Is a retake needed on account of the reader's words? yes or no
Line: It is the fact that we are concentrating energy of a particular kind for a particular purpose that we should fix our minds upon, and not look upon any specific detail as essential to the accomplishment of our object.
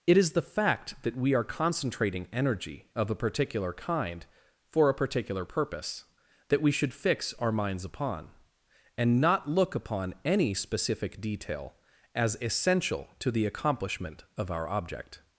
no